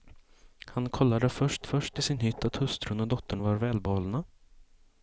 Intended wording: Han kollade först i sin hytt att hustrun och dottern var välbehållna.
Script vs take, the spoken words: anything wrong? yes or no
yes